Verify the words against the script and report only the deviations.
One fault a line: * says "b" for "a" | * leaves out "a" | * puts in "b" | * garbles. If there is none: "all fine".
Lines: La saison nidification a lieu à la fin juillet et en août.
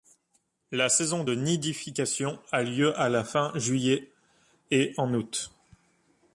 * puts in "de"